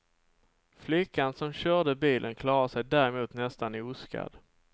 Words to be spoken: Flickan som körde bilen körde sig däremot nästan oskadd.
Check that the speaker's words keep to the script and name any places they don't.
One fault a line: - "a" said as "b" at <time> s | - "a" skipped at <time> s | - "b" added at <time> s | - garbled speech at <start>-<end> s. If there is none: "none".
- "körde" said as "klarade" at 2.3 s